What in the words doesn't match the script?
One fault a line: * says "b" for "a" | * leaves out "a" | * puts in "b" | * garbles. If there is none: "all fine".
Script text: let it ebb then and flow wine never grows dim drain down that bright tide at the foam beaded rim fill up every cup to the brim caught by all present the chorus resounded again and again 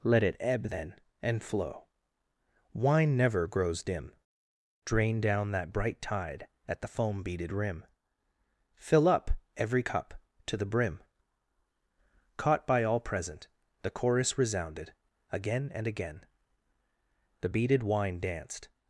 * puts in "the beaded wine danced"